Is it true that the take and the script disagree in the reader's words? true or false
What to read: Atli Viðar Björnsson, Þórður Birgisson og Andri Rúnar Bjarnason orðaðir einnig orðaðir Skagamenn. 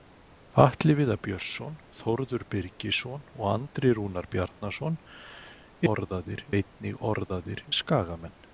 false